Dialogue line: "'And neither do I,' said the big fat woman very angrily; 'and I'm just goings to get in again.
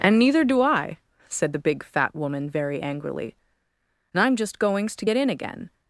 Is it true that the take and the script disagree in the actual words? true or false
false